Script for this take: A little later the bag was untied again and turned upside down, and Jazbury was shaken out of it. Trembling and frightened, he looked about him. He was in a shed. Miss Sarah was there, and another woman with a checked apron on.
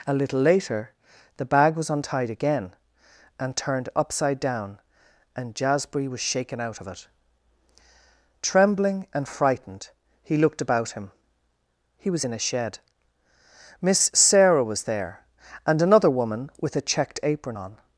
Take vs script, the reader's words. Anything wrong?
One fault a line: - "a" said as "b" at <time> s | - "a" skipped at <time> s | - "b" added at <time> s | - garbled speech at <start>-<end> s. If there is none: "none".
none